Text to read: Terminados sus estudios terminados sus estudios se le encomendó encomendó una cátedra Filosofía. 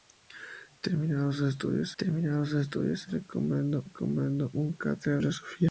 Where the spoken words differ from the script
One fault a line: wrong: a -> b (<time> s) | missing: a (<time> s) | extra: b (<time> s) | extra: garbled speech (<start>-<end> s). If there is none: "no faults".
no faults